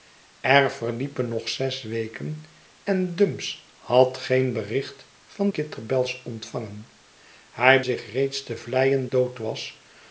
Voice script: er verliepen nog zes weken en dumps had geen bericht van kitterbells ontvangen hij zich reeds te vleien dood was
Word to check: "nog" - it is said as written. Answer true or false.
true